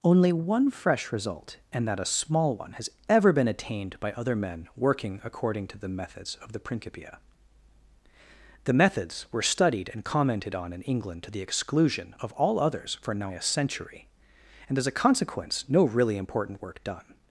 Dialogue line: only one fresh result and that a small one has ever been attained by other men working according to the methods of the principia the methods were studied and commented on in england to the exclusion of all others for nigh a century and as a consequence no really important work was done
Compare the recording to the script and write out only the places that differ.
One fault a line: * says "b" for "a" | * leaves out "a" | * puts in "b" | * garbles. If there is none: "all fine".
* leaves out "was"